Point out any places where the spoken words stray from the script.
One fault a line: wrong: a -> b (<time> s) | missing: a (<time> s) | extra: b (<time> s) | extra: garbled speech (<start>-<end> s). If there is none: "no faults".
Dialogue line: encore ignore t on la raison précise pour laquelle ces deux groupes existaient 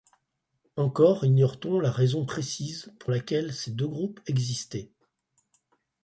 no faults